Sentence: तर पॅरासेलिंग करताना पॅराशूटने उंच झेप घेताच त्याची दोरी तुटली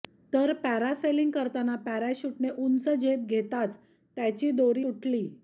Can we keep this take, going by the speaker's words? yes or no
yes